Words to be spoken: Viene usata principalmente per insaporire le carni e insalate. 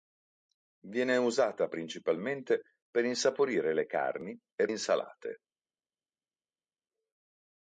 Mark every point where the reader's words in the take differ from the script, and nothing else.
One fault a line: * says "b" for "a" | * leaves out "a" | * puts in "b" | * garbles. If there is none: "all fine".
all fine